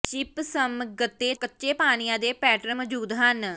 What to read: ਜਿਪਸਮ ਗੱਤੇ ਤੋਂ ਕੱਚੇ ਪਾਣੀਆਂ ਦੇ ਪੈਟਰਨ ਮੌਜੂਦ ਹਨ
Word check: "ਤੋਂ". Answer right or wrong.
wrong